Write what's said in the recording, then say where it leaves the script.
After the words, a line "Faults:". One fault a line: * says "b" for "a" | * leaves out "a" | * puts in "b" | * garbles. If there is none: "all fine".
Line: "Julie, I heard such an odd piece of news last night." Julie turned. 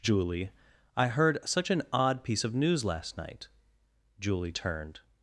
"Julie, I heard such an odd piece of news last night." Julie turned.
Faults:
all fine